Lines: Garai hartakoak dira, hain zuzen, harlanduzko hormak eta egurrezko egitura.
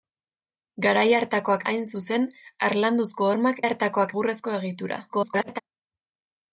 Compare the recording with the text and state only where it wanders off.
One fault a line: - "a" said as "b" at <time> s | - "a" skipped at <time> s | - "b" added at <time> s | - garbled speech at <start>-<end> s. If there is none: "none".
- "dira" skipped at 1.6 s
- "eta" said as "hartakoak" at 3.7 s
- garbled speech at 5.1-5.6 s